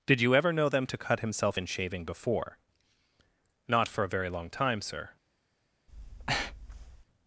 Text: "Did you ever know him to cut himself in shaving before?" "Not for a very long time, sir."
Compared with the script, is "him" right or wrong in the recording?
wrong